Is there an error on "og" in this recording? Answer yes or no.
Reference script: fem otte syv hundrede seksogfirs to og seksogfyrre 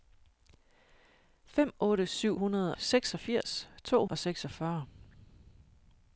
no